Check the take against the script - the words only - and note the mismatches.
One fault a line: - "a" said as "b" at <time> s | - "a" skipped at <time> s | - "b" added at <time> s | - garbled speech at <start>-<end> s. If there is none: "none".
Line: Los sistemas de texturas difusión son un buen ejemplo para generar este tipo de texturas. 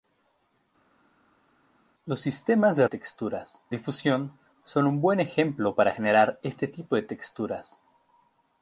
none